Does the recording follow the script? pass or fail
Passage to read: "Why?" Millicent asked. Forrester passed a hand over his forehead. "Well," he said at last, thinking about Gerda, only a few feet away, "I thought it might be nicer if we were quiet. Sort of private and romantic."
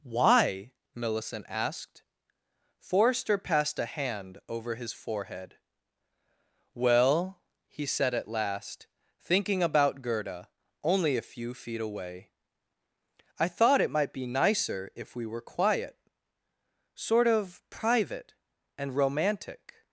pass